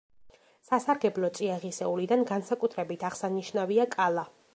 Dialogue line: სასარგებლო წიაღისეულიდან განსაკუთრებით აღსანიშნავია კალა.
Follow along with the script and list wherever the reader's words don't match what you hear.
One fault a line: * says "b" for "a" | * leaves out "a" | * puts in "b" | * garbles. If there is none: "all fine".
all fine